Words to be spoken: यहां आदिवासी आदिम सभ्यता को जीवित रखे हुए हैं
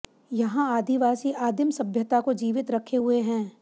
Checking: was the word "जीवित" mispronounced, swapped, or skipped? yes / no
no